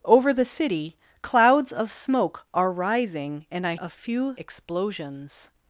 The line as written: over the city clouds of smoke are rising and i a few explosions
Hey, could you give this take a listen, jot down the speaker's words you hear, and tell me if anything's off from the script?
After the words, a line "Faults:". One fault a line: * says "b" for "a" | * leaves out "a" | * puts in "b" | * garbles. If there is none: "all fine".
over the city clouds of smoke are rising and i a few explosions
Faults:
all fine